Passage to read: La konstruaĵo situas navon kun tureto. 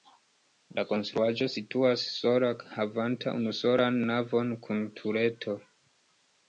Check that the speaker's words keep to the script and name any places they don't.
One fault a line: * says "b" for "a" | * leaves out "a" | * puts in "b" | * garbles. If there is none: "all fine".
* puts in "sola havanta unusolan"